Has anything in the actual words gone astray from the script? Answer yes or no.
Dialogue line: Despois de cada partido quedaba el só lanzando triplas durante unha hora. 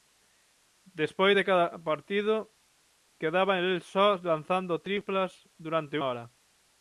yes